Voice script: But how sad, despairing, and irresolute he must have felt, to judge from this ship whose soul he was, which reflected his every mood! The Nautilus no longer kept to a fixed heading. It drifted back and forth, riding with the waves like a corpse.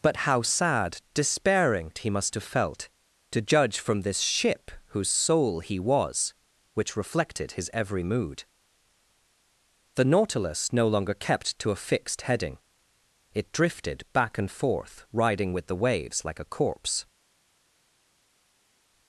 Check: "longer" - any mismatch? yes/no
no